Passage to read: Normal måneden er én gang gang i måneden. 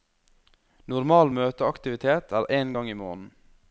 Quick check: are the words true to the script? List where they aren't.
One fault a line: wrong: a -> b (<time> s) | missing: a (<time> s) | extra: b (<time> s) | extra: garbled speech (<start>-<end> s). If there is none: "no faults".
wrong: måneden -> møteaktivitet (1.4 s)
missing: gang (2.9 s)